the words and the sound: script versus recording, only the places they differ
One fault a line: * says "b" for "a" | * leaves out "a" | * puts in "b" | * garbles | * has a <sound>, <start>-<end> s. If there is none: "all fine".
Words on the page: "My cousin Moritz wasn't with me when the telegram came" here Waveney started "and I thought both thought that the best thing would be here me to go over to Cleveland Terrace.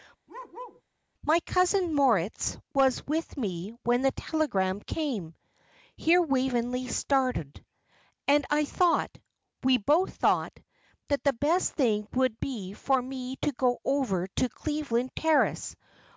* has a bark, 0.3-0.8 s
* says "was" for "wasn't"
* puts in "we"
* says "for" for "here"